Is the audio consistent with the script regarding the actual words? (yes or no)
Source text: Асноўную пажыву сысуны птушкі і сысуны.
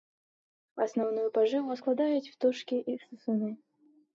no